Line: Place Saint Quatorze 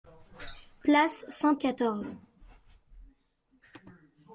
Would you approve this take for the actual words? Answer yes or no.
yes